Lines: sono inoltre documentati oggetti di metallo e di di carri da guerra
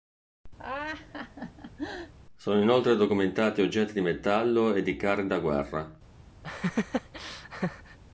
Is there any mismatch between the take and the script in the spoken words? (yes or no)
yes